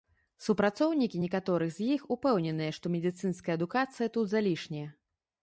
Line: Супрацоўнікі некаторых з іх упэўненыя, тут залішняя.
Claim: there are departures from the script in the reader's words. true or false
true